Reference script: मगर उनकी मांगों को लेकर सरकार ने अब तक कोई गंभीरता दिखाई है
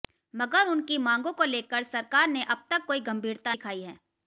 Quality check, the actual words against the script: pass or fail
pass